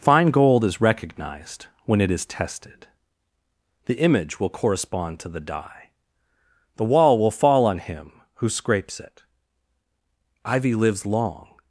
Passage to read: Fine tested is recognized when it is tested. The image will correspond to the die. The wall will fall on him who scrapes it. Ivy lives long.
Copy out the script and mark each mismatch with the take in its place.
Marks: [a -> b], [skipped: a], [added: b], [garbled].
Fine [tested -> gold] is recognized when it is tested. The image will correspond to the die. The wall will fall on him who scrapes it. Ivy lives long.